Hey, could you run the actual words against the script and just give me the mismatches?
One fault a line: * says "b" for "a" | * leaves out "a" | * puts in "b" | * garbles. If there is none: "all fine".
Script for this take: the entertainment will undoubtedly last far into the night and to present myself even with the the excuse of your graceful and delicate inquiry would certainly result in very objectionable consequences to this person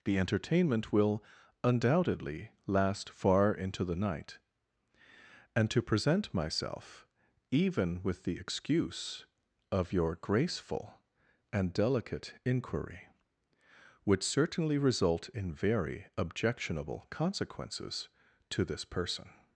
* leaves out "the"